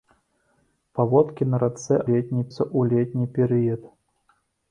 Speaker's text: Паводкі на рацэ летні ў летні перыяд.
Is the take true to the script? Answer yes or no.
yes